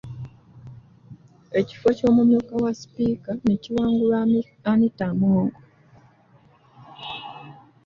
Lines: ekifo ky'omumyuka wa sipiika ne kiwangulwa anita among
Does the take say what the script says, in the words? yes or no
yes